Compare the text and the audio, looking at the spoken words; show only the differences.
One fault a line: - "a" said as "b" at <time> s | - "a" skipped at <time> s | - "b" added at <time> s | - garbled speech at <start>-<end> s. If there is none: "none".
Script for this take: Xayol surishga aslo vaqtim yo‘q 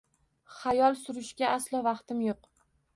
none